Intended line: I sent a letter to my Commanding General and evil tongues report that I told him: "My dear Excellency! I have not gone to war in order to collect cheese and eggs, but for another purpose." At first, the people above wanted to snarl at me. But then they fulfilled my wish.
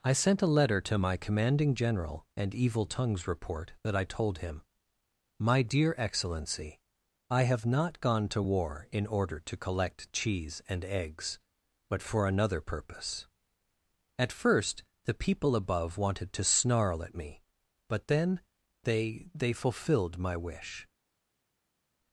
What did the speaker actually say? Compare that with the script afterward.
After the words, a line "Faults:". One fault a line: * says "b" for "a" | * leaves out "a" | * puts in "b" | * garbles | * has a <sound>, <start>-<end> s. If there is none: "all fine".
I sent a letter to my Commanding General and evil tongues report that I told him: "My dear Excellency! I have not gone to war in order to collect cheese and eggs, but for another purpose." At first, the people above wanted to snarl at me. But then they they fulfilled my wish.
Faults:
* puts in "they"